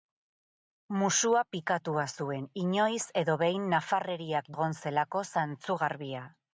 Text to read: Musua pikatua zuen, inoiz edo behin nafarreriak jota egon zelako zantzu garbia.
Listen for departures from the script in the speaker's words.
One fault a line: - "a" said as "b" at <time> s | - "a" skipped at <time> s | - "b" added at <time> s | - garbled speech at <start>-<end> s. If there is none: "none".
- "jota" skipped at 4.5 s